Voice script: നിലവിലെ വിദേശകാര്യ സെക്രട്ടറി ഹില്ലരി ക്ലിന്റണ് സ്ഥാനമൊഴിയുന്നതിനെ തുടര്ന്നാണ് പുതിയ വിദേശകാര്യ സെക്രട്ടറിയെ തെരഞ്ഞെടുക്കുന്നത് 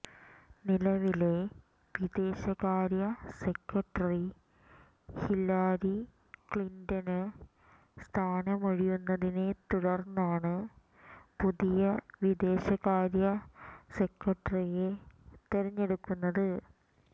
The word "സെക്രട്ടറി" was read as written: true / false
true